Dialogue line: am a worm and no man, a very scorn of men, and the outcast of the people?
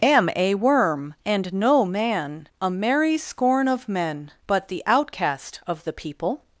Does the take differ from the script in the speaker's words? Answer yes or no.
yes